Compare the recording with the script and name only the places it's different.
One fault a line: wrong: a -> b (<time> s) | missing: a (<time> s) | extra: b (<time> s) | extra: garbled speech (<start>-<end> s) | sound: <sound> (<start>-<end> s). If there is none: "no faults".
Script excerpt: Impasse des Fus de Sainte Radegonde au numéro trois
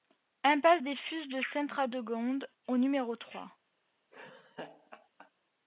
sound: laugh (4.1-5.3 s)